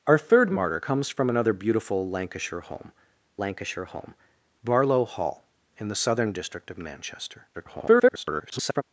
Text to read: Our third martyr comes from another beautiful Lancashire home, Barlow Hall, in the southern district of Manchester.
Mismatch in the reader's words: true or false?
true